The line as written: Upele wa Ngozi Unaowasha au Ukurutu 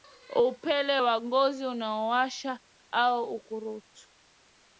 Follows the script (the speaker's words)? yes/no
yes